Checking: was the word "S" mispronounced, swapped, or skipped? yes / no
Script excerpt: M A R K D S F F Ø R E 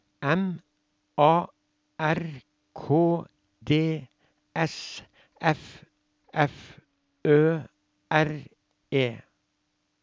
no